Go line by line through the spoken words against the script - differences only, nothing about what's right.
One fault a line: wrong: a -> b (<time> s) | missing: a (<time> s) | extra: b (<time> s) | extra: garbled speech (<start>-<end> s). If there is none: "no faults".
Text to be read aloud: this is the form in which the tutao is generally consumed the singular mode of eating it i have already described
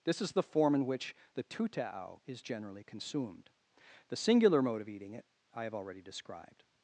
no faults